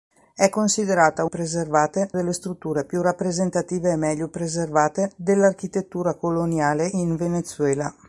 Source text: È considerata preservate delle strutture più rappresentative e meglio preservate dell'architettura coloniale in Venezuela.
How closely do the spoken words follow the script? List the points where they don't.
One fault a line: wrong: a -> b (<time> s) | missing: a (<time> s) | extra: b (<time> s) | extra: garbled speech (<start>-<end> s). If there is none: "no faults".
no faults